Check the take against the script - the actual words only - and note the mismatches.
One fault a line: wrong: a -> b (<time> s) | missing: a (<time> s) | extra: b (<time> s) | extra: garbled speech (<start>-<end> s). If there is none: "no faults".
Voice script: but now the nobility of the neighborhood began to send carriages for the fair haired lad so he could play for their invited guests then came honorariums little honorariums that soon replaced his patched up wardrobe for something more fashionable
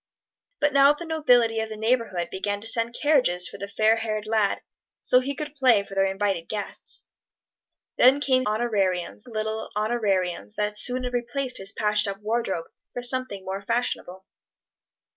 no faults